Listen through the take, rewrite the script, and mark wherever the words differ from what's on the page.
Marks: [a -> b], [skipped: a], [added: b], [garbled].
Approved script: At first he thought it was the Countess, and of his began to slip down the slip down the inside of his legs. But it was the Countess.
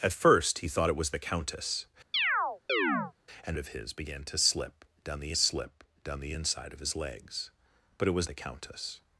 At first he thought it was the Countess, and of his began to slip down the slip down the inside of his legs. But it was the Countess.